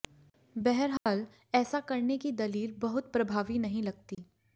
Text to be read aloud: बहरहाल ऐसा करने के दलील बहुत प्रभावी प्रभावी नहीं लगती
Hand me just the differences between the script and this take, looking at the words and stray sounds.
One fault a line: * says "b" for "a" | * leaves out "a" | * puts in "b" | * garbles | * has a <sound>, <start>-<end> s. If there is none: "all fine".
* has a dropout, 1.0-1.1 s
* says "की" for "के"
* leaves out "प्रभावी"
* has a dropout, 4.1-4.2 s